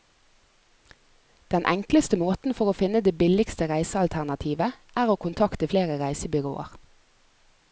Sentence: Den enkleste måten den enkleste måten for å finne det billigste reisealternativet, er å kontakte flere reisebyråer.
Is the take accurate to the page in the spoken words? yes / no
no